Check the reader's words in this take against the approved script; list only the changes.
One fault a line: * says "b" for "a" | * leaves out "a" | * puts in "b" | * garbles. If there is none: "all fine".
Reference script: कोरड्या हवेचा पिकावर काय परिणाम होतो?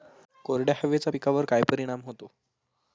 all fine